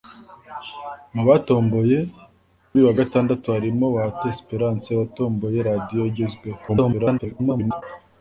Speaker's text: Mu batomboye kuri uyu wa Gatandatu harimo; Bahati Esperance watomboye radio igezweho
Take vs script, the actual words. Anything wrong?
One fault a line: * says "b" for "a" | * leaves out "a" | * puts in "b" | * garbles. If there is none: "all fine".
* leaves out "kuri"
* garbles